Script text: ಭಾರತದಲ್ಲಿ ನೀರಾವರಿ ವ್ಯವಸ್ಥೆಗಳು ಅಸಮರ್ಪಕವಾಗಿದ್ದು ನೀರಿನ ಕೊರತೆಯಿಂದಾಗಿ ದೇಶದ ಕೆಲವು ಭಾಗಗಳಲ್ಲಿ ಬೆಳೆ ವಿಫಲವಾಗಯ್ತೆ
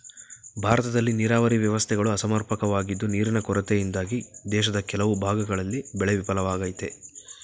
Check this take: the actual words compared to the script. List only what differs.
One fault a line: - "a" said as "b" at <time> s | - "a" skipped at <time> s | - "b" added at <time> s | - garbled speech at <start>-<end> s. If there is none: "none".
none